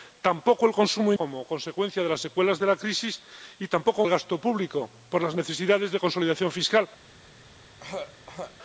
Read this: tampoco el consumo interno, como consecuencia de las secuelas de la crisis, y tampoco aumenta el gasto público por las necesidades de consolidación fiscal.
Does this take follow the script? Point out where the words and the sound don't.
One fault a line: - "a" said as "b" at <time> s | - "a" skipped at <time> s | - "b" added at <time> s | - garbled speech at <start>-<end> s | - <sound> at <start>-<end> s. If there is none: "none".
- "interno" skipped at 1.1 s
- "aumenta" skipped at 4.0 s
- throat clearing at 7.8-8.6 s